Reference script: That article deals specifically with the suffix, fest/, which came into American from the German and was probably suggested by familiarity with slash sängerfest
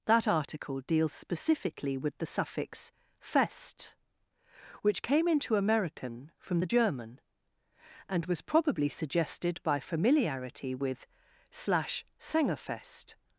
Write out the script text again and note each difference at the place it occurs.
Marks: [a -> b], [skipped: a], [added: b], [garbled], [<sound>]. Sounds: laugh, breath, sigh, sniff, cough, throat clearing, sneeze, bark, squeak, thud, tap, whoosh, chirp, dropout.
That article deals specifically with the suffix, fest/, which came into American from the German and was probably suggested by familiarity with slash sängerfest